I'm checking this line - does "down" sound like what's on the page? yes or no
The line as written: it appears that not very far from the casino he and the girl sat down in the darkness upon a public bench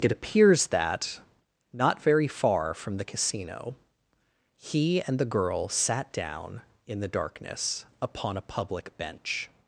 yes